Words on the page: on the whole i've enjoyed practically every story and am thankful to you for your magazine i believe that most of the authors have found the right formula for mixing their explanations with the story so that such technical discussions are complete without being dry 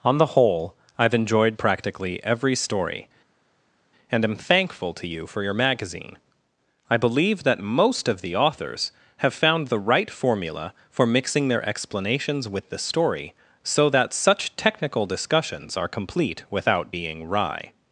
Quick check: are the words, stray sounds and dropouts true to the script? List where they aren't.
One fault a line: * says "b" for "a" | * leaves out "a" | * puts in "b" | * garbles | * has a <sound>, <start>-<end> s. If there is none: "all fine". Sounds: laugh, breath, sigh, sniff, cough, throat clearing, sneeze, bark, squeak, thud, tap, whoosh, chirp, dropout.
* says "wry" for "dry"